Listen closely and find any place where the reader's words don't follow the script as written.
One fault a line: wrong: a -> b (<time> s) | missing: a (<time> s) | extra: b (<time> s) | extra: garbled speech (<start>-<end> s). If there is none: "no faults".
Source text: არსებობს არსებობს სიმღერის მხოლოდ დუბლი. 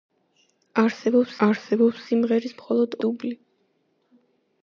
no faults